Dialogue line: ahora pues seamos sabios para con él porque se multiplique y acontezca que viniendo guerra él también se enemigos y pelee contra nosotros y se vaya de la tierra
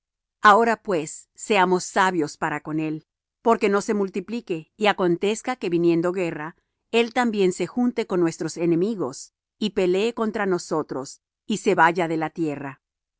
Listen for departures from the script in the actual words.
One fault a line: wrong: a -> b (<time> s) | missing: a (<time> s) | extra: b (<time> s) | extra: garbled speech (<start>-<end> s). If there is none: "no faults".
extra: no (3.7 s)
extra: junte con nuestros (7.7 s)